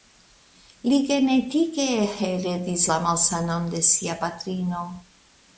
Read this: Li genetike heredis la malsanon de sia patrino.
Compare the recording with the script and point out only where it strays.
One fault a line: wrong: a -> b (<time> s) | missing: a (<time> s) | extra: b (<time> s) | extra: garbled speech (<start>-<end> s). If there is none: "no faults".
no faults